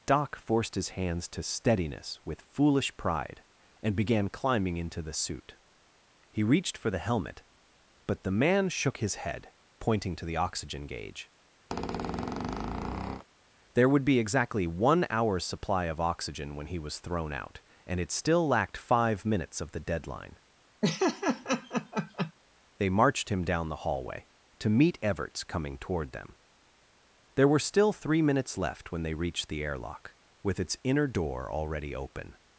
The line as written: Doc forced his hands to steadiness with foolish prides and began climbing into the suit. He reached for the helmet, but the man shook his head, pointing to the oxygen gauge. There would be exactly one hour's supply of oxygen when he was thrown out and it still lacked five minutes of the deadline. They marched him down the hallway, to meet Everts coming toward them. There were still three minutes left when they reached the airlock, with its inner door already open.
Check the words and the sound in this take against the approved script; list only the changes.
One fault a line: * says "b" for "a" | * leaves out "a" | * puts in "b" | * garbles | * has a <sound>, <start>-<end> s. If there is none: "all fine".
* says "pride" for "prides"
* has a squeak, 11.7-13.2 s
* has a laugh, 20.8-22.3 s